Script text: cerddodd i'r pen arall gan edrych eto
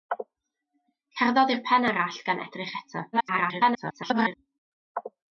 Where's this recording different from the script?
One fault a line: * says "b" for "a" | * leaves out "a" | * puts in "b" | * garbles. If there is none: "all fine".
* garbles